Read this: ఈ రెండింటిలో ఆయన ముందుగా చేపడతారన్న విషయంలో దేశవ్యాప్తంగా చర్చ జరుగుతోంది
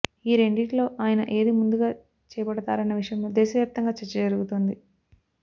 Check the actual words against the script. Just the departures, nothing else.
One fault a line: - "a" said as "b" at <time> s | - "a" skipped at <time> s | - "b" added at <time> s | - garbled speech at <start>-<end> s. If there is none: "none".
- "ఏది" added at 1.3 s